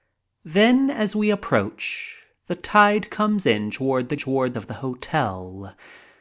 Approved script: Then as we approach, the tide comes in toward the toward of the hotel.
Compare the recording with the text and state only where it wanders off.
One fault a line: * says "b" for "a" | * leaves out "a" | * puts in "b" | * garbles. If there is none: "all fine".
all fine